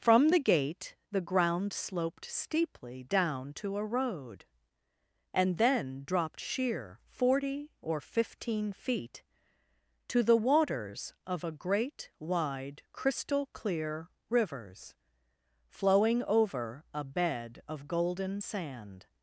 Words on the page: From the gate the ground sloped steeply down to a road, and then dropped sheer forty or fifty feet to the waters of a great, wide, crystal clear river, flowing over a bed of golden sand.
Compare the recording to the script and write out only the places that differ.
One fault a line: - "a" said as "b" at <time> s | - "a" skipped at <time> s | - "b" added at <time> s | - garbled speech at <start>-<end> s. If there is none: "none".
- "fifty" said as "fifteen" at 8.0 s
- "river" said as "rivers" at 14.3 s